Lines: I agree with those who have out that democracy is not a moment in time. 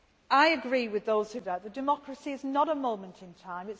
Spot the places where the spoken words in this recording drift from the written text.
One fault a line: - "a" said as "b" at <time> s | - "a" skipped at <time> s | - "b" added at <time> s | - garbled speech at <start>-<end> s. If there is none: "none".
none